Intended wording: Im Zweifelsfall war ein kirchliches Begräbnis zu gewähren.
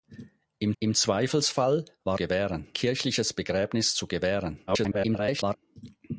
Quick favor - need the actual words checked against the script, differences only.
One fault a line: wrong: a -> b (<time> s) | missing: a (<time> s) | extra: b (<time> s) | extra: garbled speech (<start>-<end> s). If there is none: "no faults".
extra: im (0.8 s)
wrong: ein -> gewähren (2.1 s)
extra: garbled speech (4.7-5.6 s)